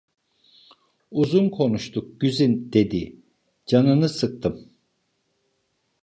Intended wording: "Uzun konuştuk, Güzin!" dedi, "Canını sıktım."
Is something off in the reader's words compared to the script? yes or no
no